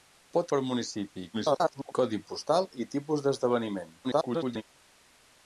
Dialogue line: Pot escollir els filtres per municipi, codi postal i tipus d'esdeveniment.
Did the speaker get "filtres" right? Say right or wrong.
wrong